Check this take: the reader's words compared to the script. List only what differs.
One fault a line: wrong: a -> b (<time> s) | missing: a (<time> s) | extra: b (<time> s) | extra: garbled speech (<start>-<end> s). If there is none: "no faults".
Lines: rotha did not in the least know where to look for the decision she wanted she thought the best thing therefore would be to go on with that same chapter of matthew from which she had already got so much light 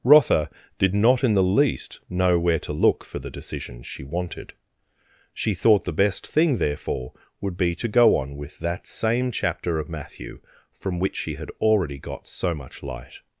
no faults